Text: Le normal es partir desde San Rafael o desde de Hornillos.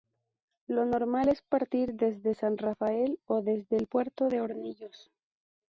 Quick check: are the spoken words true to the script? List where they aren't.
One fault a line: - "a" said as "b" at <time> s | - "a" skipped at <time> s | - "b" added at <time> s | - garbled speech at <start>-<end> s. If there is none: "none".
- "Le" said as "Lo" at 0.7 s
- "el puerto" added at 3.8 s